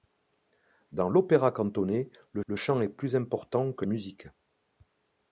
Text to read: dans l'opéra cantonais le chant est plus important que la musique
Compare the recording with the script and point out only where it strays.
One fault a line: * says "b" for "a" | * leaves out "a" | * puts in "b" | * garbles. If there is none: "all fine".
* puts in "le"
* leaves out "la"